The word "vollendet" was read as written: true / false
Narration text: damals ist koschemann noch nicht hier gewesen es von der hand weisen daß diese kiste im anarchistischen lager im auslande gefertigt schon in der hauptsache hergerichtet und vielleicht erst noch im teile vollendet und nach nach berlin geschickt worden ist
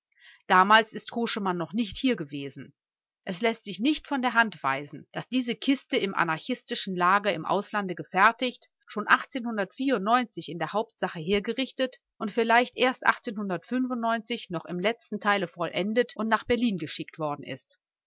true